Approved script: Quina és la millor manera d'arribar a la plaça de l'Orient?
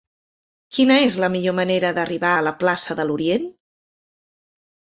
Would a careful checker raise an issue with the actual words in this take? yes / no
no